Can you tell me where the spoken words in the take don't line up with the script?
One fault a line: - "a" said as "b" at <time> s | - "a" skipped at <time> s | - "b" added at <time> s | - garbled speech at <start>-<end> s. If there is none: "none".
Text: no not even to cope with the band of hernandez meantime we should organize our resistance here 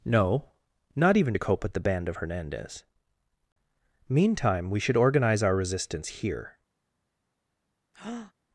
none